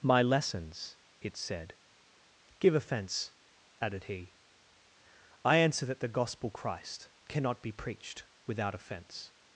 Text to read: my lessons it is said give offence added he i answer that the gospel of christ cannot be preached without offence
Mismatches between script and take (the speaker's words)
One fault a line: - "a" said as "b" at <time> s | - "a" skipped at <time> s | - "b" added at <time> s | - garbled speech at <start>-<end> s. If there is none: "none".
- "is" skipped at 1.4 s
- "of" skipped at 6.5 s